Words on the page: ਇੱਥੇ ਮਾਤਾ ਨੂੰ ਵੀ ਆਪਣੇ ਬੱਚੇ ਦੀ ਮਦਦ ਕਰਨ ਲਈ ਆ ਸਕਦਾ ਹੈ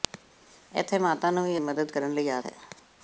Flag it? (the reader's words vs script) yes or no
yes